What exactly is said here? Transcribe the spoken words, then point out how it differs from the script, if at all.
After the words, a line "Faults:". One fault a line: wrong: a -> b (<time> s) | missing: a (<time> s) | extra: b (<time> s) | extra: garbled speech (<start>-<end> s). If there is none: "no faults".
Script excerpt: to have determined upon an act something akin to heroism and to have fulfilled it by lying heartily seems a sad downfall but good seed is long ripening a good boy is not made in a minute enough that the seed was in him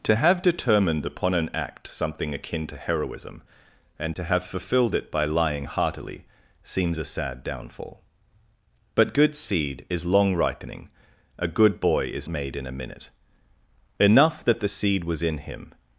to have determined upon an act something akin to heroism and to have fulfilled it by lying heartily seems a sad downfall but good seed is long ripening a good boy is made in a minute enough that the seed was in him
Faults:
missing: not (12.3 s)